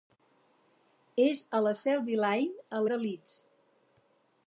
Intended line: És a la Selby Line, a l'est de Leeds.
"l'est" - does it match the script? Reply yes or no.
no